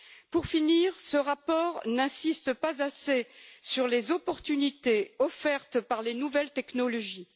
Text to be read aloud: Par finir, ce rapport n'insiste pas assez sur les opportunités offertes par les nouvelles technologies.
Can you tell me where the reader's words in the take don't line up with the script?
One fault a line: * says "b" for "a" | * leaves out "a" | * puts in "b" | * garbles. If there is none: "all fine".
* says "Pour" for "Par"